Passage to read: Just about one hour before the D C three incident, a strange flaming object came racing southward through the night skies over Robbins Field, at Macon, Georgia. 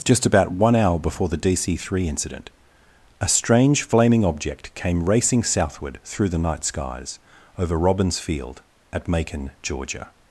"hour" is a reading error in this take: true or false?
false